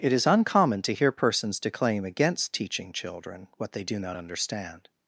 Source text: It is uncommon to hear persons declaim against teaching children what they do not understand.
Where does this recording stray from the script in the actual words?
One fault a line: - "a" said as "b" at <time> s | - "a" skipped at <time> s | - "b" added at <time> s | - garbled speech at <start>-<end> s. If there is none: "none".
none